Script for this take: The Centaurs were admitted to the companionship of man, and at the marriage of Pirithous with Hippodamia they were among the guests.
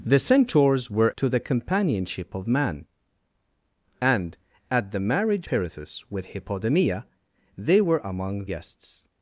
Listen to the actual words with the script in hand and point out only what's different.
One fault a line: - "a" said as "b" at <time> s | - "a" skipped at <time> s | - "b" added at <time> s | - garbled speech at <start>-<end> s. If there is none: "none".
- "admitted" skipped at 1.1 s
- "of" skipped at 5.5 s
- "the" skipped at 8.5 s